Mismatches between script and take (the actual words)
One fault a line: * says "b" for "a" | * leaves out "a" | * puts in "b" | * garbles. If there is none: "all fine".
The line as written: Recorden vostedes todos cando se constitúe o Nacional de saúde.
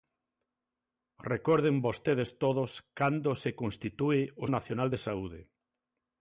all fine